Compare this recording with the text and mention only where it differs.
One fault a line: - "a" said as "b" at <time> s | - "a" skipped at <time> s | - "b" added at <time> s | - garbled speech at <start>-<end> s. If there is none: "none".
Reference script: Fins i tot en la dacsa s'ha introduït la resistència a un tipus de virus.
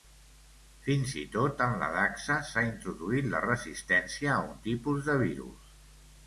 none